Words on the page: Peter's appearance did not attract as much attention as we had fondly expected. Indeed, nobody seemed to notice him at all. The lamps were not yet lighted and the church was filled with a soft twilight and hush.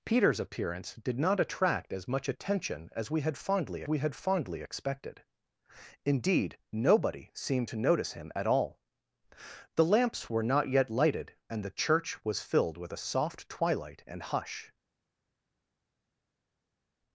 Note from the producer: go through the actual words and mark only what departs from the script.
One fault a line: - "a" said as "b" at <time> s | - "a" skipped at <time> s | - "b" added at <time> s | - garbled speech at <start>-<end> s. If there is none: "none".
- "we had fondly" added at 3.9 s